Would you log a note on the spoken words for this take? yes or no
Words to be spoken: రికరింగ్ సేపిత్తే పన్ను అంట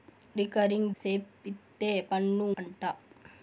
no